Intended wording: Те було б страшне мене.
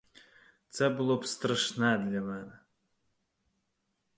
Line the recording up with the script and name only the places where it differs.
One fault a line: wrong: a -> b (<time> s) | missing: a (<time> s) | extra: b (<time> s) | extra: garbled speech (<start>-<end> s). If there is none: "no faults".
wrong: Те -> Це (0.7 s)
extra: для (2.0 s)